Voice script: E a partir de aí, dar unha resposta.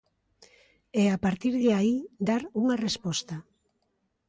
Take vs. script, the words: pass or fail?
pass